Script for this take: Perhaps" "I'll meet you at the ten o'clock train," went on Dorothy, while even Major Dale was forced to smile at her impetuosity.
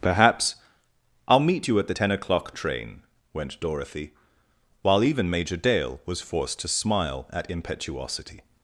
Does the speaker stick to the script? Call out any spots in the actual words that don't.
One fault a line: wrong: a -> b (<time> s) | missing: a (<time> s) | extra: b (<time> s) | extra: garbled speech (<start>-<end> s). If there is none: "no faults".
missing: on (3.6 s)
missing: her (7.5 s)